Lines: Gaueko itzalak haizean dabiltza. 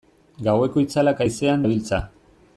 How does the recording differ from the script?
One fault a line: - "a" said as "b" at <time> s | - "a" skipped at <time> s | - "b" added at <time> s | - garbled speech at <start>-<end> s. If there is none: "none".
none